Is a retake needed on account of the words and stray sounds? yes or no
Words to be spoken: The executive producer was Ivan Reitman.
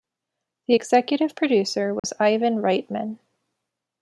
yes